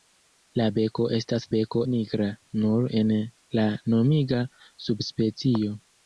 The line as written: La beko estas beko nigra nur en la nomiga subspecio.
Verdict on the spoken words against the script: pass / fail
pass